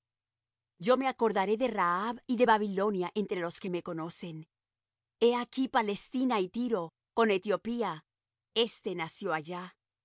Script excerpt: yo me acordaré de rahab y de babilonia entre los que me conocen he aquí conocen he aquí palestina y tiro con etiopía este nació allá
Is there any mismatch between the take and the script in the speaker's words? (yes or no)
yes